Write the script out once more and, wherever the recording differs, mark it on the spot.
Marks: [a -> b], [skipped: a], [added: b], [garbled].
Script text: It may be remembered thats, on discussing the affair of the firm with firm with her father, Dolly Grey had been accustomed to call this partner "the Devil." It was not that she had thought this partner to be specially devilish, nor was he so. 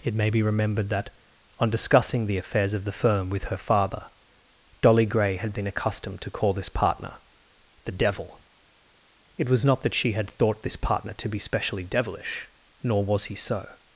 It may be remembered [thats, -> that] on discussing the [affair -> affairs] of the firm with [skipped: firm with] her father, Dolly Grey had been accustomed to call this partner "the Devil." It was not that she had thought this partner to be specially devilish, nor was he so.